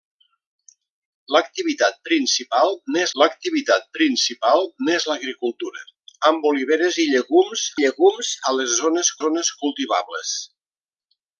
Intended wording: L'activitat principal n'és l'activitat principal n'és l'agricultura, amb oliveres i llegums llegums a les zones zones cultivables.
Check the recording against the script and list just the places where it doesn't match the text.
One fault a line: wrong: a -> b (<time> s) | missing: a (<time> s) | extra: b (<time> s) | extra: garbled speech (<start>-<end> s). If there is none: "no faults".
no faults